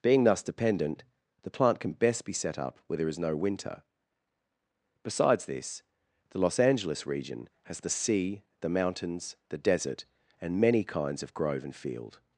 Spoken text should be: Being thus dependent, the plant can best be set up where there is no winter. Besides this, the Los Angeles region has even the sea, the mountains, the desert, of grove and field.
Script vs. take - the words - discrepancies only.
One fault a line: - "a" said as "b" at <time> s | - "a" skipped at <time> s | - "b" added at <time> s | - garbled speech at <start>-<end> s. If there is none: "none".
- "even" skipped at 7.8 s
- "and many kinds" added at 10.4 s